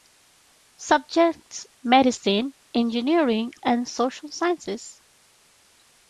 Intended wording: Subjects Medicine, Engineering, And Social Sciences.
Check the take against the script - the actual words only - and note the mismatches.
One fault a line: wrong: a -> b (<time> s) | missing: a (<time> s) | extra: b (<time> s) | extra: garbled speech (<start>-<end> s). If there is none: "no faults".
no faults